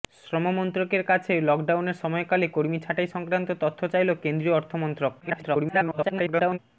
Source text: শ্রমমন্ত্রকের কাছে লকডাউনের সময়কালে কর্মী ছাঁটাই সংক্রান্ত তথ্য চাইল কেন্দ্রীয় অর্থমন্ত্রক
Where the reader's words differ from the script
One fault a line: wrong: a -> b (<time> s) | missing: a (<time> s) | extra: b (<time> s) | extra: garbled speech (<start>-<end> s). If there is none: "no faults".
extra: garbled speech (5.2-6.6 s)